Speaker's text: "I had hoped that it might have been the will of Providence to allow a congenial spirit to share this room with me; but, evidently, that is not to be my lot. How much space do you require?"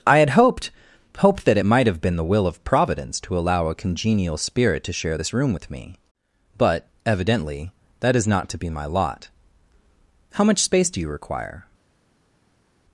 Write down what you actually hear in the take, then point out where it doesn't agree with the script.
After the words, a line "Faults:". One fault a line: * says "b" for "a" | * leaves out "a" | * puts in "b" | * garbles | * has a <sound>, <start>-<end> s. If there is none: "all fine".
"I had hoped hoped that it might have been the will of Providence to allow a congenial spirit to share this room with me; but, evidently, that is not to be my lot. How much space do you require?"
Faults:
* puts in "hoped"